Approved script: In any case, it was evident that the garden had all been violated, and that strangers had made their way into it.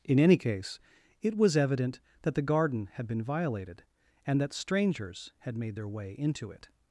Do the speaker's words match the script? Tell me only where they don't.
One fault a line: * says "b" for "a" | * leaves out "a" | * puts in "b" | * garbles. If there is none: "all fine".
* leaves out "all"